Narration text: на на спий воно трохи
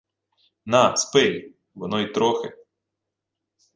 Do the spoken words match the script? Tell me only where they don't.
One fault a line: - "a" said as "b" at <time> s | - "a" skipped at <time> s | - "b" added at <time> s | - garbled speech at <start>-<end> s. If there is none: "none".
- "на" skipped at 1.0 s
- "й" added at 2.0 s